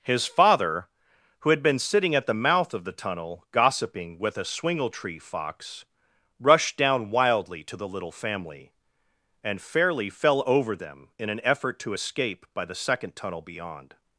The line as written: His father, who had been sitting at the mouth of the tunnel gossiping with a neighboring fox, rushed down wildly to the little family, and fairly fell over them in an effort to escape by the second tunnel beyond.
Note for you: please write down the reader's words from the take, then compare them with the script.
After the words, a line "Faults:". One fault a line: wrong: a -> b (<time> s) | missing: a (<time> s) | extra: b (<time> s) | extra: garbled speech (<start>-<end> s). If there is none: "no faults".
His father, who had been sitting at the mouth of the tunnel gossiping with a swingletree fox, rushed down wildly to the little family, and fairly fell over them in an effort to escape by the second tunnel beyond.
Faults:
wrong: neighboring -> swingletree (4.5 s)